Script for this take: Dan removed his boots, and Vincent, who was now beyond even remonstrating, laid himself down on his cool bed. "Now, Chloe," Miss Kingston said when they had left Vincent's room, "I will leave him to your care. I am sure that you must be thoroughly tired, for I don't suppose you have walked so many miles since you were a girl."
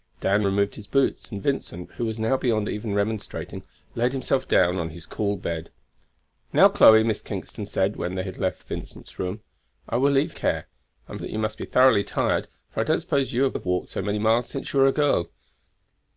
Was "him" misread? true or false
true